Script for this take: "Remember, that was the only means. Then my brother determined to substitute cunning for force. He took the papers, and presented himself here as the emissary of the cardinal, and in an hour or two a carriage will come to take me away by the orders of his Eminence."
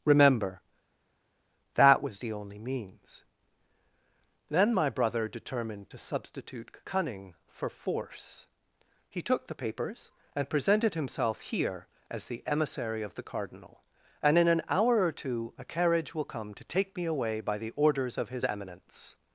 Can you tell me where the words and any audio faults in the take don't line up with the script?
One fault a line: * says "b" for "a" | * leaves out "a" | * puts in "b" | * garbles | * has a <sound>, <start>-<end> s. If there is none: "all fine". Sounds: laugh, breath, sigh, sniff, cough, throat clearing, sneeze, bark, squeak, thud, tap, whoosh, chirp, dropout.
all fine